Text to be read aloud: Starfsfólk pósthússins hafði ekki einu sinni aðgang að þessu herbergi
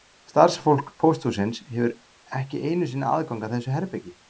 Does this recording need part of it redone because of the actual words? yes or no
yes